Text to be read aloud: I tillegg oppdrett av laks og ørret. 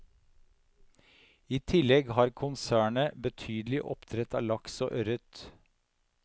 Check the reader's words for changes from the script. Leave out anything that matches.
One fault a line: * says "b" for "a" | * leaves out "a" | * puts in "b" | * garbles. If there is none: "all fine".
* puts in "har konsernet betydelig"